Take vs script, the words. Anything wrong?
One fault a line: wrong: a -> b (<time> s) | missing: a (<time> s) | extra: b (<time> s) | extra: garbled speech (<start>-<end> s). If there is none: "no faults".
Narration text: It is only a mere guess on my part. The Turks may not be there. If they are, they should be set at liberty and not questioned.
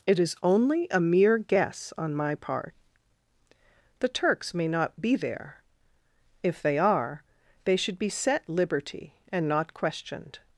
missing: at (8.5 s)